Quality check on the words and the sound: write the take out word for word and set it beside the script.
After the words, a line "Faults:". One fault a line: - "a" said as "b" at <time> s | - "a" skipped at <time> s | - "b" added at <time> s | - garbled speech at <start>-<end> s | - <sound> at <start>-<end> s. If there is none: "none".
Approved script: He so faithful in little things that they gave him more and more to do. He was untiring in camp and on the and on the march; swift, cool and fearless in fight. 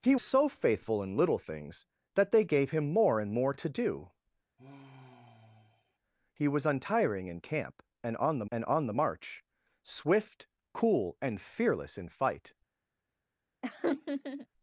He so faithful in little things that they gave him more and more to do. He was untiring in camp and on the and on the march; swift, cool and fearless in fight.
Faults:
- sigh at 4.6-6.0 s
- laugh at 13.6-14.5 s